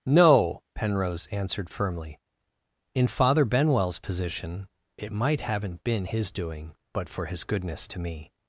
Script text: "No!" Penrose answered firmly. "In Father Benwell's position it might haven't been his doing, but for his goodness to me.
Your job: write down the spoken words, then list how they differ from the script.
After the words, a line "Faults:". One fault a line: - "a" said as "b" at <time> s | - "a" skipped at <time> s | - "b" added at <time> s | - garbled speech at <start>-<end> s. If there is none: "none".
"No!" Penrose answered firmly. "In Father Benwell's position it might haven't been his doing, but for his goodness to me.
Faults:
none